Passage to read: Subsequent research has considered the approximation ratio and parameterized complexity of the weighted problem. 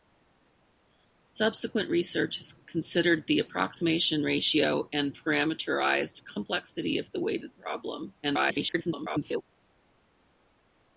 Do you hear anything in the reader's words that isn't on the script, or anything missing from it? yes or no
yes